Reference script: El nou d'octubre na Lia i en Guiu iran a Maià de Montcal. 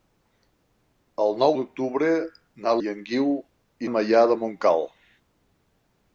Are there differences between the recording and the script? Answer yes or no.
yes